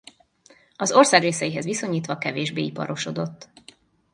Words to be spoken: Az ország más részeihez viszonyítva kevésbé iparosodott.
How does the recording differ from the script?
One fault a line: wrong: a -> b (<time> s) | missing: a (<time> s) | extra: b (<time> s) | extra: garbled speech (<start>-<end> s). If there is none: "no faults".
missing: más (1.2 s)